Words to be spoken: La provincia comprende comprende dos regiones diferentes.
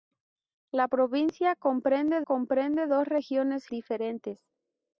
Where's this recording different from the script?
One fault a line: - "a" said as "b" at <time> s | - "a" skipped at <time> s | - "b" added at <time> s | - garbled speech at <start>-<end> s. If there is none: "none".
none